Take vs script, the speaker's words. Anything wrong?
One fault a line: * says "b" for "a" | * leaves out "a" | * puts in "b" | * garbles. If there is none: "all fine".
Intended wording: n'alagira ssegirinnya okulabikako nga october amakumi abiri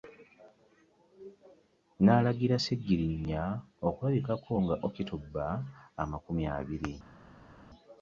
all fine